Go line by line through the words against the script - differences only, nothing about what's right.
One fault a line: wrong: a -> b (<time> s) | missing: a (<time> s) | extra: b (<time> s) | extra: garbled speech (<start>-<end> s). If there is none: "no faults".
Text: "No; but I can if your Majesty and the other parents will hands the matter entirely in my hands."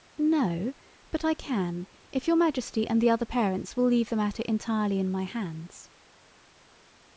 wrong: hands -> leave (3.8 s)